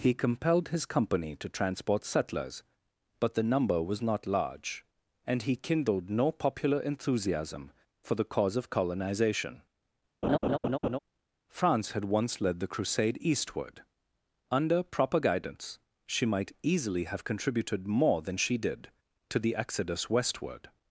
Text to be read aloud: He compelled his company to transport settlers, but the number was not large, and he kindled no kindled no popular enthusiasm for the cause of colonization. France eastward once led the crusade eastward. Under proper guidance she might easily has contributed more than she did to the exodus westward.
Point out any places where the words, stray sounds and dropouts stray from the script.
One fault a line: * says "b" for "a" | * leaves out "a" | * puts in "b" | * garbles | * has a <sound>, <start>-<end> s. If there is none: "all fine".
* leaves out "kindled no"
* has a laugh, 10.2-11.0 s
* says "had" for "eastward"
* says "have" for "has"